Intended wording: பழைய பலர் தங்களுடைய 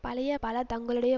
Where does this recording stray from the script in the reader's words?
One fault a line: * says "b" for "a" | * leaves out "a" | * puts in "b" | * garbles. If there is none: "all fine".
all fine